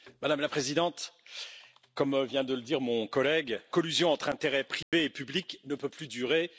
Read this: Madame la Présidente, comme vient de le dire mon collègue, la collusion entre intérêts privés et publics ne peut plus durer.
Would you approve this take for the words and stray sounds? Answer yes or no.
no